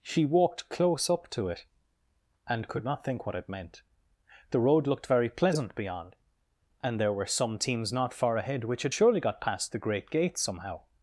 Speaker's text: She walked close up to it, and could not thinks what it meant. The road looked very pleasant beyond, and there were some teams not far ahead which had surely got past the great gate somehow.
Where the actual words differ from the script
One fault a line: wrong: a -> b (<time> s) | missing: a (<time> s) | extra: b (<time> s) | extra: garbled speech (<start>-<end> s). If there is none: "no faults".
wrong: thinks -> think (3.0 s)